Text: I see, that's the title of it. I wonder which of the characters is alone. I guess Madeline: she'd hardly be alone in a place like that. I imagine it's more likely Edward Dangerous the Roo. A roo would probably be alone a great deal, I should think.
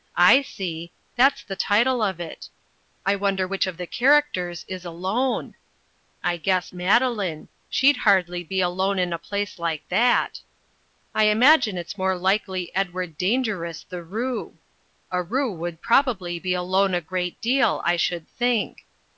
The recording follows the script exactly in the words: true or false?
true